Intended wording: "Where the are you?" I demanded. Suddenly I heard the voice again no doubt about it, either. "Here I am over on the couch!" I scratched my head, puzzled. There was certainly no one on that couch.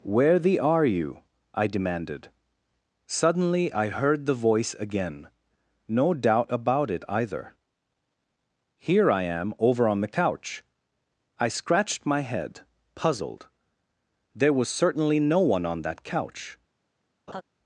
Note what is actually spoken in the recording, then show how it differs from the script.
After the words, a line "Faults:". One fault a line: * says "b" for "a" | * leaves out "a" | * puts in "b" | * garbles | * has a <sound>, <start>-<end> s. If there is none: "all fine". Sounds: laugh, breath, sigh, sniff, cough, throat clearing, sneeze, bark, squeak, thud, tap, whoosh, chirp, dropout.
"Where the are you?" I demanded. Suddenly I heard the voice again no doubt about it, either. "Here I am over on the couch!" I scratched my head, puzzled. There was certainly no one on that couch.
Faults:
* has a laugh, 17.3-17.4 s